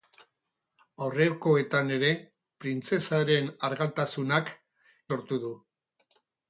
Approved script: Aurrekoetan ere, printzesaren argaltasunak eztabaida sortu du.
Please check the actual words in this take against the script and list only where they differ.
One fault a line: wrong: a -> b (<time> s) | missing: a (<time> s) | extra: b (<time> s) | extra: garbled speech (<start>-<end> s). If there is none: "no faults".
missing: eztabaida (4.5 s)